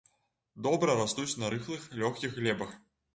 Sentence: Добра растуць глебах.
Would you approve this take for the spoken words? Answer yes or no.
no